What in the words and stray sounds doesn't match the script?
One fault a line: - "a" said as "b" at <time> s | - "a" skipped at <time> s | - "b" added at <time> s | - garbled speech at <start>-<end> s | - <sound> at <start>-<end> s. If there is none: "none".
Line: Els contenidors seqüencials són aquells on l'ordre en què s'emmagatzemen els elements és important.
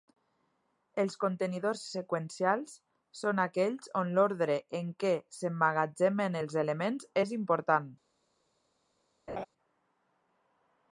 - laugh at 9.3-9.4 s